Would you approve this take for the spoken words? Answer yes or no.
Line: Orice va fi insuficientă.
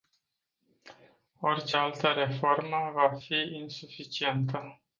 no